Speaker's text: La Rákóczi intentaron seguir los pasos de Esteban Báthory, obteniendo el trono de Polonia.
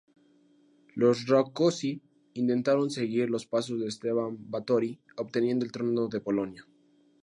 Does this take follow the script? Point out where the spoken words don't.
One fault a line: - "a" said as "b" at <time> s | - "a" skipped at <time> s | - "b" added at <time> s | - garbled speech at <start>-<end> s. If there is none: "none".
- "La" said as "Los" at 0.9 s